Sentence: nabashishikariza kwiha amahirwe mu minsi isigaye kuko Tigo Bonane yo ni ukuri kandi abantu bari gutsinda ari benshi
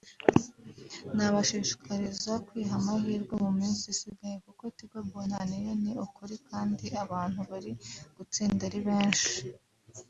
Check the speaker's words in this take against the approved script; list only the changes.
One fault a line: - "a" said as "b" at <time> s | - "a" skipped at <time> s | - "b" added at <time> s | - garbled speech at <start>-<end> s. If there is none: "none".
none